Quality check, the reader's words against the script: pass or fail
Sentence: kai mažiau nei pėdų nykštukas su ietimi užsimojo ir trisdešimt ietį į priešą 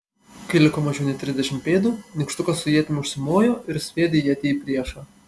fail